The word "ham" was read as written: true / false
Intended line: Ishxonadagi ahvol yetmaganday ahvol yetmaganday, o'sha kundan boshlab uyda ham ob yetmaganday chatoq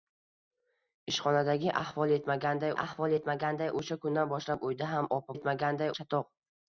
true